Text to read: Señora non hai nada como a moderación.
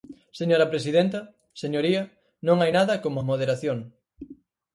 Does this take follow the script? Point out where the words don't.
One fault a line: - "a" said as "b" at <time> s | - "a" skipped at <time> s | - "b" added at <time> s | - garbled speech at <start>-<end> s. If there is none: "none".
- "presidenta señoría" added at 0.7 s